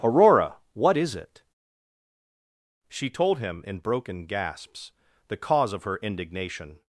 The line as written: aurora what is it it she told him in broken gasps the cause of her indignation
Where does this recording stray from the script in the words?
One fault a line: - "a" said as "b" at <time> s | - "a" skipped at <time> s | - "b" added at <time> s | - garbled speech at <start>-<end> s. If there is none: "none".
- "it" skipped at 1.4 s